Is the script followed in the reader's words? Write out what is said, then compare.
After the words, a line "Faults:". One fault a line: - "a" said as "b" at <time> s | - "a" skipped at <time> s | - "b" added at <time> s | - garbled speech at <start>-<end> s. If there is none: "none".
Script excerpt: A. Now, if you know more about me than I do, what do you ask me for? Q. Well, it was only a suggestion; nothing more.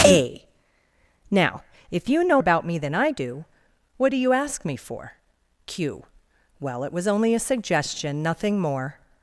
A. Now, if you know about me than I do, what do you ask me for? Q. Well, it was only a suggestion; nothing more.
Faults:
- "more" skipped at 2.4 s